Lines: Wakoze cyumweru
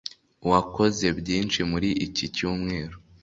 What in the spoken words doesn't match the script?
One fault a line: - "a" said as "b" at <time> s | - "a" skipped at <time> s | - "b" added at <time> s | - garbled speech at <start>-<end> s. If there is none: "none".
- "byinshi muri iki" added at 1.2 s